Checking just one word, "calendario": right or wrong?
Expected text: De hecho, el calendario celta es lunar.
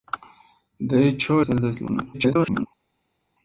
wrong